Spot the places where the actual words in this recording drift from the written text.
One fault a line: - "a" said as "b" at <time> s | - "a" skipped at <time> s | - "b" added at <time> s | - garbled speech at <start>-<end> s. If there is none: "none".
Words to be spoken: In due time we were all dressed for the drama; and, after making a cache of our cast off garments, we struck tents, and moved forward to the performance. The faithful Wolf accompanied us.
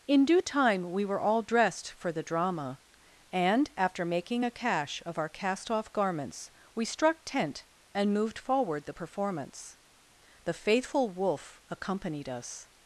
- "tents" said as "tent" at 7.2 s
- "to" skipped at 8.8 s